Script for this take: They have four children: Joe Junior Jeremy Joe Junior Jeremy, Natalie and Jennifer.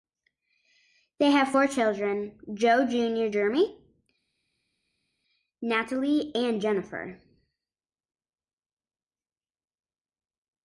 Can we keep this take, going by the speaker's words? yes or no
no